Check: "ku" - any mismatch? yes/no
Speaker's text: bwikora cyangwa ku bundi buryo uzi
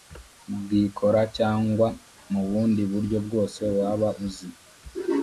yes